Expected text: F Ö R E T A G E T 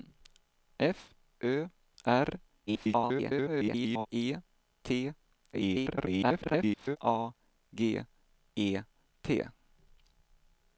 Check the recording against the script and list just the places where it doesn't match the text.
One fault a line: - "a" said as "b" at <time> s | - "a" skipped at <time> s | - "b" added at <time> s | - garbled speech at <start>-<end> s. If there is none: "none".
- garbled speech at 2.7-4.1 s
- garbled speech at 5.5-7.0 s